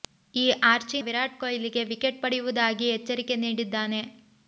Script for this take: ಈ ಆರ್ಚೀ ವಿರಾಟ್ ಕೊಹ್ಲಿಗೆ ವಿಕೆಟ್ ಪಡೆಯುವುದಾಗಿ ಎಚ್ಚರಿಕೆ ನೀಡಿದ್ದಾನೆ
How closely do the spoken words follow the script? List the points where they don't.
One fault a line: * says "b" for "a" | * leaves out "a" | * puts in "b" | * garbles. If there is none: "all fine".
all fine